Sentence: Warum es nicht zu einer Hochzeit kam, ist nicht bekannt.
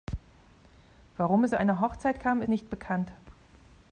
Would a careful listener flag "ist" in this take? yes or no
yes